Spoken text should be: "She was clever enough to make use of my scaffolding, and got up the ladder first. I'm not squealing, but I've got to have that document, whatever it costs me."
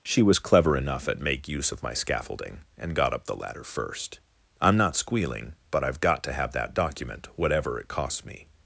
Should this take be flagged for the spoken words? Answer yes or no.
yes